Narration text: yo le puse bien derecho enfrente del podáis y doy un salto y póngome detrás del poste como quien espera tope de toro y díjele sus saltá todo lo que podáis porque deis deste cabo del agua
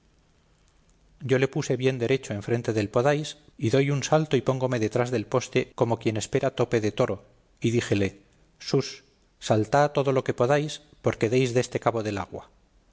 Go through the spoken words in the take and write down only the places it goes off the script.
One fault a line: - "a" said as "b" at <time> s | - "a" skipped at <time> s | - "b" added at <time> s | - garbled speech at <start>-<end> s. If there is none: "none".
none